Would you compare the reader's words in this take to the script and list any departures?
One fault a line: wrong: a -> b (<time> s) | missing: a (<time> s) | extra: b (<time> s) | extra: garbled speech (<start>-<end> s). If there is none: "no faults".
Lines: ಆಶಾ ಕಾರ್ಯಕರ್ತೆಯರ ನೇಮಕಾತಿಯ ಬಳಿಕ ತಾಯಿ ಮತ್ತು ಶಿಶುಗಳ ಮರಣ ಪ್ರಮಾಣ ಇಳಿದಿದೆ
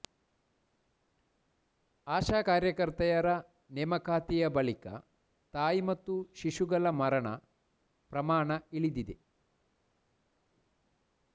no faults